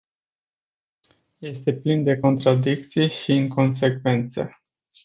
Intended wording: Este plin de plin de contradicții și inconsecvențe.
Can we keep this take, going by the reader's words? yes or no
no